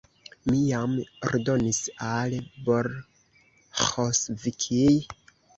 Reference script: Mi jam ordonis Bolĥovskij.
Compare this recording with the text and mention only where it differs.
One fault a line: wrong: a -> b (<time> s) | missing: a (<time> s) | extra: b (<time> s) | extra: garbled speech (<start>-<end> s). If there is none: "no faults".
extra: al (2.1 s)